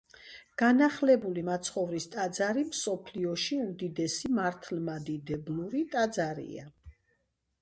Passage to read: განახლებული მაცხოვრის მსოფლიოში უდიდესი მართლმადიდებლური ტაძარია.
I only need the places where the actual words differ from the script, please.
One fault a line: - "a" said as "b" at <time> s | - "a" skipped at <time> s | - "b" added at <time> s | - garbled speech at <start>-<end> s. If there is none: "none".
- "ტაძარი" added at 2.1 s